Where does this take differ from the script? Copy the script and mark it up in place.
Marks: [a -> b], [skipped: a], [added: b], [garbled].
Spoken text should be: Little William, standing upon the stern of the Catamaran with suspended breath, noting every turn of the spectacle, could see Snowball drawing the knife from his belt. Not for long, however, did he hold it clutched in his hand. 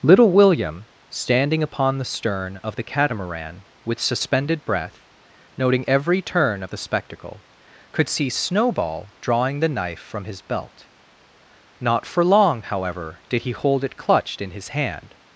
Little William, standing upon the stern of the Catamaran with suspended breath, noting every turn of the spectacle, could see Snowball drawing the knife from his belt. Not for long, however, did he hold it clutched in his hand.